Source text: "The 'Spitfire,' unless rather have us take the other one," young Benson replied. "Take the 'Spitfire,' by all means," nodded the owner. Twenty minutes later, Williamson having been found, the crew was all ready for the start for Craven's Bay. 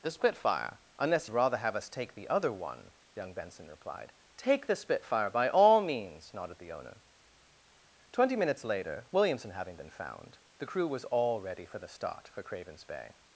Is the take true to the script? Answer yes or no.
yes